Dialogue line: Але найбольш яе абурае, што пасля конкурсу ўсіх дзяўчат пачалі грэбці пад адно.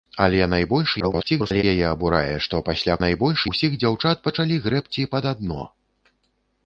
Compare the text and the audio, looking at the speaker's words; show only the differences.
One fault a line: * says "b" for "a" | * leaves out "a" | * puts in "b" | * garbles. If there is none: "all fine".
* garbles
* says "найбольш" for "конкурсу"